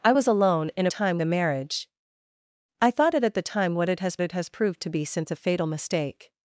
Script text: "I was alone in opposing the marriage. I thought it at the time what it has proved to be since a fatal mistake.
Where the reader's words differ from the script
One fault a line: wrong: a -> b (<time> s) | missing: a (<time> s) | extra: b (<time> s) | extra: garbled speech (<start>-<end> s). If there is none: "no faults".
wrong: opposing -> time (0.9 s)
extra: it has (4.2 s)